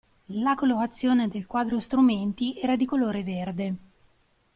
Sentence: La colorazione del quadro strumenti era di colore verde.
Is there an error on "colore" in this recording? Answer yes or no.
no